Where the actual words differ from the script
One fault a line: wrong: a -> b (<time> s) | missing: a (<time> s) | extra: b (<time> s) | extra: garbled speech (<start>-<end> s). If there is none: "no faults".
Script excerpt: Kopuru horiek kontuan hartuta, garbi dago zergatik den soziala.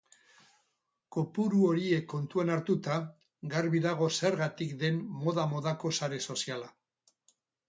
extra: moda modako sare (5.3 s)